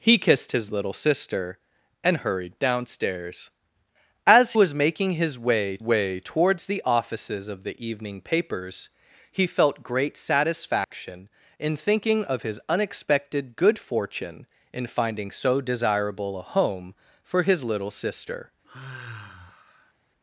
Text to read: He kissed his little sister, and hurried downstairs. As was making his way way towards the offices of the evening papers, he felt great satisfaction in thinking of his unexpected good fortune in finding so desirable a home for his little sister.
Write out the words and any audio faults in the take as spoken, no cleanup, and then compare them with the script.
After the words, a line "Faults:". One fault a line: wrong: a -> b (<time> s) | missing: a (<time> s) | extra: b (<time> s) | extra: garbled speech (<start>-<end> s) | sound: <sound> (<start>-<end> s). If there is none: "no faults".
He kissed his little sister, and hurried downstairs. As was making his way way towards the offices of the evening papers, he felt great satisfaction in thinking of his unexpected good fortune in finding so desirable a home for his little sister.
Faults:
sound: dropout (10.8-10.9 s)
sound: sigh (18.6-19.9 s)